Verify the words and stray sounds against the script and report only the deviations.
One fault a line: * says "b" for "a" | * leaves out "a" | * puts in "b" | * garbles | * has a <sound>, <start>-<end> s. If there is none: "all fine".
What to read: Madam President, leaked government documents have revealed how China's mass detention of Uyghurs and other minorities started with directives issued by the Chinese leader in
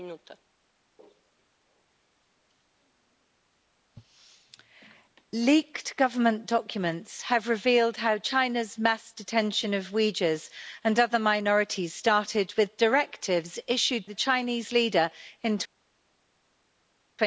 * leaves out "by"